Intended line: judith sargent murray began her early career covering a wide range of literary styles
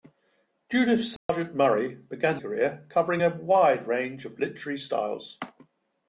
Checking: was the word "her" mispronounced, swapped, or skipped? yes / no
yes